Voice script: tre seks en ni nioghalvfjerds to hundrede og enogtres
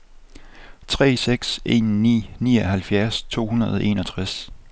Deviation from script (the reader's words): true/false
false